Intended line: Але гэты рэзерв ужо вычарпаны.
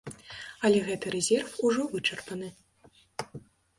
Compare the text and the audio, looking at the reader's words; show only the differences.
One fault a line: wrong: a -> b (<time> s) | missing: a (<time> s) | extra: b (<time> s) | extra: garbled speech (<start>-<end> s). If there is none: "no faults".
no faults